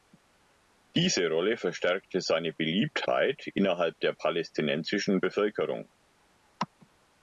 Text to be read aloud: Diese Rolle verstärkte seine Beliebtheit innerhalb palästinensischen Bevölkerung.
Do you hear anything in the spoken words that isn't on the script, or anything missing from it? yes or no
yes